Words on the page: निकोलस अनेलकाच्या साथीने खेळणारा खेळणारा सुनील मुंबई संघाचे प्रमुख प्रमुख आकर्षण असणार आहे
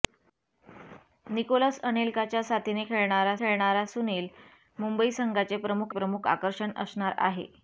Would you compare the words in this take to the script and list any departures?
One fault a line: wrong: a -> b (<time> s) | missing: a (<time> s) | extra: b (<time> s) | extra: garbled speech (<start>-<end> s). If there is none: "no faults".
no faults